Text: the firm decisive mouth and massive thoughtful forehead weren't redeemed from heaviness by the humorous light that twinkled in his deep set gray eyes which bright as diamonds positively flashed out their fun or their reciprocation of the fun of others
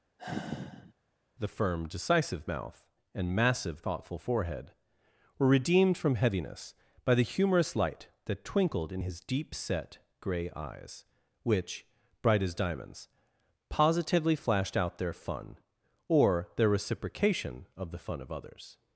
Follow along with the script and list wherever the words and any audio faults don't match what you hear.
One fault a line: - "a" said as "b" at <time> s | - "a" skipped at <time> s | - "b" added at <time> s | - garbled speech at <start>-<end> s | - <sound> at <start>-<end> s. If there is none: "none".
- sigh at 0.2-0.9 s
- "weren't" said as "were" at 5.4 s